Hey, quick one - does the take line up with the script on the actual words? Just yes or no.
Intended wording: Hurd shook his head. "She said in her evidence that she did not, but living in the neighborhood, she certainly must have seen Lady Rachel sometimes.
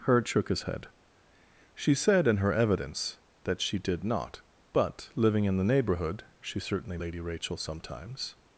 no